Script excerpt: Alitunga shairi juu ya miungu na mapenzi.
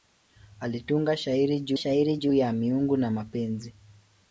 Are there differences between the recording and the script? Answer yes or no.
yes